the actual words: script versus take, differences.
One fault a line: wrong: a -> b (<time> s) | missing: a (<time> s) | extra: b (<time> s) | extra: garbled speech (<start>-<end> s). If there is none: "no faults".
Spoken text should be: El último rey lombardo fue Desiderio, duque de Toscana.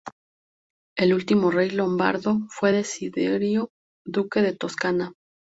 no faults